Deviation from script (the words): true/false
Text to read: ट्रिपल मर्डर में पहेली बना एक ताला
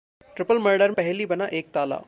true